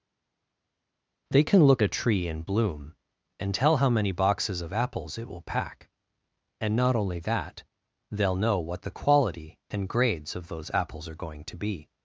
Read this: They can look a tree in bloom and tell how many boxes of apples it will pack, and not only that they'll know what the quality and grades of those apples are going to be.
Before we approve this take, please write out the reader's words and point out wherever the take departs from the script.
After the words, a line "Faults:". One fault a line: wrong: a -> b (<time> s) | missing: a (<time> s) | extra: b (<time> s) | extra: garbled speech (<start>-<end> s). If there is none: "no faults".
They can look a tree in bloom and tell how many boxes of apples it will pack, and not only that they'll know what the quality and grades of those apples are going to be.
Faults:
no faults